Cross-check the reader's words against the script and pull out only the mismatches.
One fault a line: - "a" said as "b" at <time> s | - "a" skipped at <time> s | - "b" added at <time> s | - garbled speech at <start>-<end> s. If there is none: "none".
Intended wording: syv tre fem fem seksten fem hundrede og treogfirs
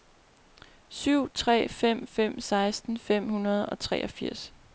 none